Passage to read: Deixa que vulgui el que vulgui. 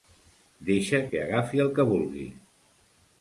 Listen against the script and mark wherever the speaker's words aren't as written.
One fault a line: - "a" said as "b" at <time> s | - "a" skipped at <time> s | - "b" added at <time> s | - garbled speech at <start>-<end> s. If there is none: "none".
- "vulgui" said as "agafi" at 1.2 s